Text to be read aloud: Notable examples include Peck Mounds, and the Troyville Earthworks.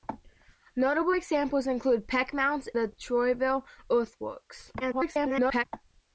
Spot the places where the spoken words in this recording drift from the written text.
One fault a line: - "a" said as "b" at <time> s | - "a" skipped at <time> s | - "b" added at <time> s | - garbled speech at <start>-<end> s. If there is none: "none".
- "and" skipped at 2.7 s
- garbled speech at 4.8-5.6 s